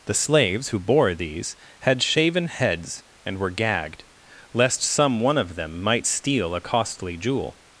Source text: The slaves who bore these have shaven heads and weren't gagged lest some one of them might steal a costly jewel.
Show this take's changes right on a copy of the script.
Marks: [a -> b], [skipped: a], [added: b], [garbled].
The slaves who bore these [have -> had] shaven heads and [weren't -> were] gagged lest some one of them might steal a costly jewel.